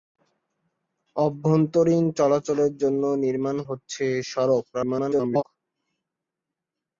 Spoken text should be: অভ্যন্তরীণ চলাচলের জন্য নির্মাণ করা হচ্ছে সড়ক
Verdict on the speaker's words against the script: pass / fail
fail